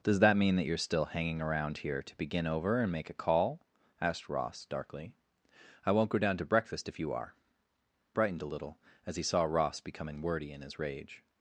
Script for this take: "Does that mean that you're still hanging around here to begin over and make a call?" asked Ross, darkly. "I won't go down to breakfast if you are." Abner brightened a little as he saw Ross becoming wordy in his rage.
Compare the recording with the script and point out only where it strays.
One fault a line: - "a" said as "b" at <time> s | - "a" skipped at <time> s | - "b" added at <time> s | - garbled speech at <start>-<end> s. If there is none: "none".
- "Abner" skipped at 7.3 s